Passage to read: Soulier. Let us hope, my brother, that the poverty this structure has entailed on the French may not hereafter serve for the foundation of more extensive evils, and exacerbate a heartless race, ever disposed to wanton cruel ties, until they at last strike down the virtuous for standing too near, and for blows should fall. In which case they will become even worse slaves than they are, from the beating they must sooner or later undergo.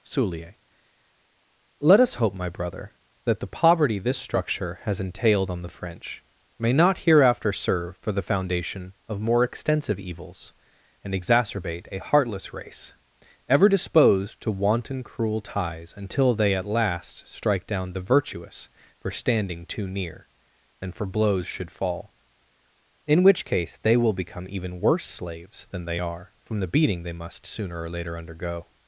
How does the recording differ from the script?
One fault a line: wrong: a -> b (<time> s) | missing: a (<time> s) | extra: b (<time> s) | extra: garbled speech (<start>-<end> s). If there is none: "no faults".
no faults